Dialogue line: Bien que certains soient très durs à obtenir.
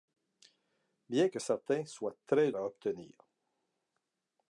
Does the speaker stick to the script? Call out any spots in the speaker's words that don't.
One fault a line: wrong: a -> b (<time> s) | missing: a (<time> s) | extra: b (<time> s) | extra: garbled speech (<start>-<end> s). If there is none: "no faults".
missing: durs (2.5 s)